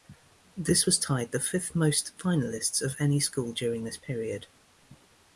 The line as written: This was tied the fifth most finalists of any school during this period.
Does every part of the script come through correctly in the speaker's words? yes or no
yes